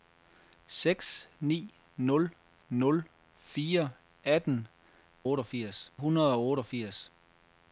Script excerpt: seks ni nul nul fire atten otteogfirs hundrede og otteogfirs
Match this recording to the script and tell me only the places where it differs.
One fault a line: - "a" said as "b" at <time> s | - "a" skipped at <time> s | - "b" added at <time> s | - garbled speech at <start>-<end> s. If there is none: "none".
none